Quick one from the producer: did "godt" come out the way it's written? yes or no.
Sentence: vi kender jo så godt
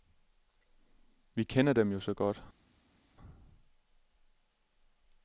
yes